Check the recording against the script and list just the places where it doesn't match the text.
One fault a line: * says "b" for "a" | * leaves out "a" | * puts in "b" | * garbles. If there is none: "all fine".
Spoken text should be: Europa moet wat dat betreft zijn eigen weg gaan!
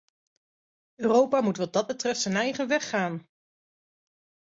all fine